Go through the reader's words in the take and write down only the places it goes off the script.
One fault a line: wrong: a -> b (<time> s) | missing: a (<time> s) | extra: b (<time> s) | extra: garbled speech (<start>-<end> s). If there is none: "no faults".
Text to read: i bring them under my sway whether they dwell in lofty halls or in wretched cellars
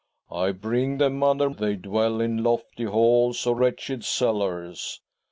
missing: my sway whether (1.5 s)
missing: in (3.6 s)